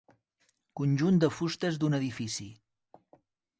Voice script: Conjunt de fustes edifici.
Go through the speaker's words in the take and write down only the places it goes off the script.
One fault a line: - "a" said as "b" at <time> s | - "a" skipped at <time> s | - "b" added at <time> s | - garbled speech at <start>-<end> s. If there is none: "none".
- "d'un" added at 1.8 s